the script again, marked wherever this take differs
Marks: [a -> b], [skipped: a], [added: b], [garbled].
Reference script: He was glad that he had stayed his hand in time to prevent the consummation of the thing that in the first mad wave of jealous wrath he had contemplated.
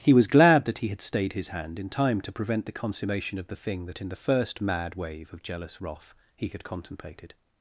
He was glad that he had stayed his hand in time to prevent the consummation of the thing that in the first mad wave of jealous wrath he had contemplated.